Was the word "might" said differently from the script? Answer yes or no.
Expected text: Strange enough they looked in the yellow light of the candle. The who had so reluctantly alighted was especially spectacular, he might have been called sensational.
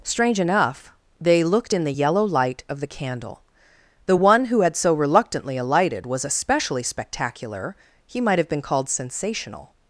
no